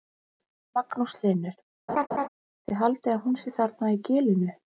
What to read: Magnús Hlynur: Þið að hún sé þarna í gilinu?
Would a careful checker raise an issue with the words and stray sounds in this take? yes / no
yes